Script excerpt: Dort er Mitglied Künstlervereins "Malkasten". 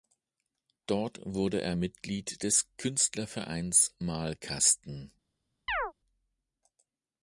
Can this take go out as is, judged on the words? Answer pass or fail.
fail